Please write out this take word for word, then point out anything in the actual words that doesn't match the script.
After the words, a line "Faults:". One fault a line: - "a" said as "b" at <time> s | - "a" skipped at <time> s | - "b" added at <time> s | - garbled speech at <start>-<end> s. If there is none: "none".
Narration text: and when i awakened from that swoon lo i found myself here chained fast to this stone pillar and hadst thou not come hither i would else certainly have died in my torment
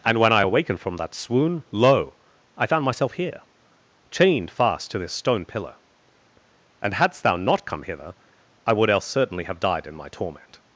and when i awakened from that swoon lo i found myself here chained fast to this stone pillar and hadst thou not come hither i would else certainly have died in my torment
Faults:
none